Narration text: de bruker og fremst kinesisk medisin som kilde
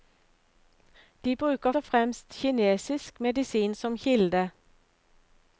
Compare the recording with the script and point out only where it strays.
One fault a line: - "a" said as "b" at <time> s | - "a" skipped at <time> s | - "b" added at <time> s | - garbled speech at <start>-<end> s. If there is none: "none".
none